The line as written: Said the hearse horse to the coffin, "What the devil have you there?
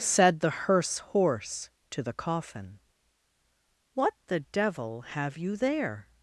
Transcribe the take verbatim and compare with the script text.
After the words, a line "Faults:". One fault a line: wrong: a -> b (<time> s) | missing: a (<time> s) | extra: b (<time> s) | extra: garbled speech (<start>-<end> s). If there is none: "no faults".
Said the hearse horse to the coffin, "What the devil have you there?
Faults:
no faults